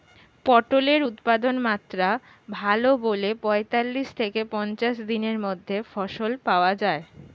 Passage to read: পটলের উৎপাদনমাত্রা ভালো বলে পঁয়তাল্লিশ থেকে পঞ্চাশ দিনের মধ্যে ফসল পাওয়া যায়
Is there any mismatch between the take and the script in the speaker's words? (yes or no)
no